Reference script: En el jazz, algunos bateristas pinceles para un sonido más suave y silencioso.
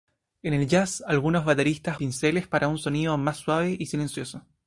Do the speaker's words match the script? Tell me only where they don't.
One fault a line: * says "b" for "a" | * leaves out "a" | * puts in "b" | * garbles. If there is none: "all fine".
all fine